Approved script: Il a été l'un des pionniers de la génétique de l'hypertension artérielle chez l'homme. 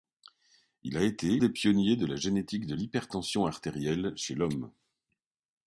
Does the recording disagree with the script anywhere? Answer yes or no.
yes